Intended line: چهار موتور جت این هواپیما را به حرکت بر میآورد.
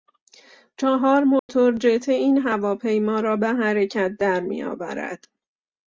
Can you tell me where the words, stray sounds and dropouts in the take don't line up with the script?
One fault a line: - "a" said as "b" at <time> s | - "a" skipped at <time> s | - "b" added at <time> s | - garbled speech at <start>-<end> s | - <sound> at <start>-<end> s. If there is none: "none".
- dropout at 1.4-1.5 s
- "بر" said as "در" at 4.2 s